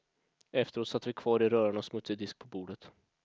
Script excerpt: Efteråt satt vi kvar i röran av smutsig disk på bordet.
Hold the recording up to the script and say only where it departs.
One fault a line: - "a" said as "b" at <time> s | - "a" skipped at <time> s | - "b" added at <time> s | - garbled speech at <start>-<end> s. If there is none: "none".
none